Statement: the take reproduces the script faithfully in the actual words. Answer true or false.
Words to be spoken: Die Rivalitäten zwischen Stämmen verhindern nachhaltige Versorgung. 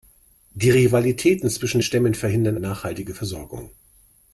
true